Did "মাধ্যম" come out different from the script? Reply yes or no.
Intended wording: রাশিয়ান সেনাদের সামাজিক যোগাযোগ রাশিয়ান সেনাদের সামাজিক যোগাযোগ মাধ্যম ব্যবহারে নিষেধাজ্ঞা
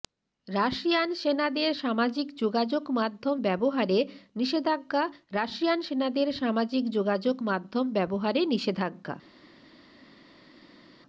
no